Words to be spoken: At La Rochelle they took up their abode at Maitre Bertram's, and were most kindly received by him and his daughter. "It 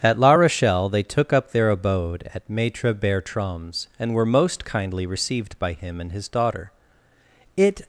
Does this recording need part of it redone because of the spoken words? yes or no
no